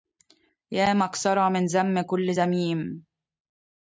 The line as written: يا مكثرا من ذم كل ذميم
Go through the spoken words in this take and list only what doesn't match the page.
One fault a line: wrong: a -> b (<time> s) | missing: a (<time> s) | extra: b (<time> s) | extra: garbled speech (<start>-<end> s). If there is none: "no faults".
no faults